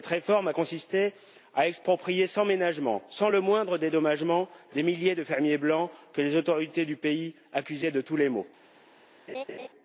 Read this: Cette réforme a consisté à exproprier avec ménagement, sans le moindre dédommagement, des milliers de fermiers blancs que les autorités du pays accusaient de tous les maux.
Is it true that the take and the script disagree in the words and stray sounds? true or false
true